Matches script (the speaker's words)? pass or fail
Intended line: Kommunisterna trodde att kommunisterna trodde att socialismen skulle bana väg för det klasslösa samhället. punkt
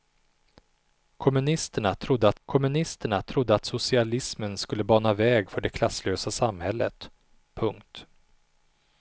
pass